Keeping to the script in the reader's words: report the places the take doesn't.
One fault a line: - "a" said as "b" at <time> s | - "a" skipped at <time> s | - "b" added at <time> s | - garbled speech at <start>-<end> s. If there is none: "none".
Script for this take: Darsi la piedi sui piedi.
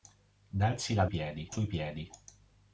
none